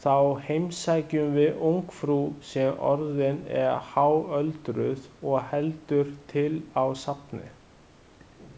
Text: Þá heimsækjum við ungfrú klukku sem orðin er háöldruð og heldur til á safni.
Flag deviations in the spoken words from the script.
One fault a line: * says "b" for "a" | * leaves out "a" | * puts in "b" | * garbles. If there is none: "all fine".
* leaves out "klukku"